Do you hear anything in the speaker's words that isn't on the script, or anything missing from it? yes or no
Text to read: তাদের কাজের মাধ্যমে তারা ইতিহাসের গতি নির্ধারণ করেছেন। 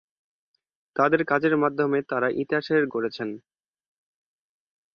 yes